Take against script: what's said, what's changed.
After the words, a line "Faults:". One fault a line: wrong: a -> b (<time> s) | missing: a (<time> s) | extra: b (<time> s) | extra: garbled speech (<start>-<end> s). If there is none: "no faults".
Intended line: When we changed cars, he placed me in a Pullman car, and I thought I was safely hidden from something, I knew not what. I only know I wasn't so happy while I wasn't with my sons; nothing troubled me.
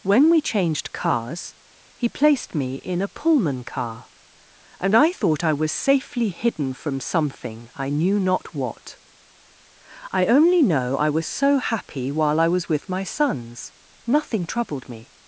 When we changed cars, he placed me in a Pullman car, and I thought I was safely hidden from something, I knew not what. I only know I was so happy while I was with my sons; nothing troubled me.
Faults:
wrong: wasn't -> was (11.1 s)
wrong: wasn't -> was (12.5 s)